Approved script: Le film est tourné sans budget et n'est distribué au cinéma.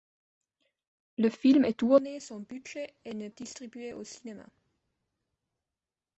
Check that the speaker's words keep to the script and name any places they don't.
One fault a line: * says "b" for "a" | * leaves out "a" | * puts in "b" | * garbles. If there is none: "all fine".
all fine